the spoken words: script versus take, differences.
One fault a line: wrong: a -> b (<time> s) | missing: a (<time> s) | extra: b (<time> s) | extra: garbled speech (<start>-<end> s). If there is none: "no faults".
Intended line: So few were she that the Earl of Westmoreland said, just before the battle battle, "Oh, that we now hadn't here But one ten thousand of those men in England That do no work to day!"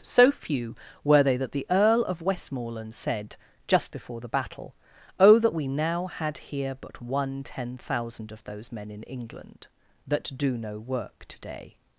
wrong: she -> they (1.2 s)
missing: battle (4.7 s)
wrong: hadn't -> had (6.1 s)